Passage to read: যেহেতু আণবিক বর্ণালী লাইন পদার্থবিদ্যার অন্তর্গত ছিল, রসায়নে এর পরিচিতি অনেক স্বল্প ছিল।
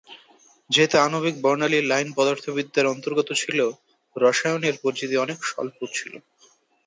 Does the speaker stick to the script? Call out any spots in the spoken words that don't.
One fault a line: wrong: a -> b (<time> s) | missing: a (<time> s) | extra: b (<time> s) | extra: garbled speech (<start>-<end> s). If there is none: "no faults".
no faults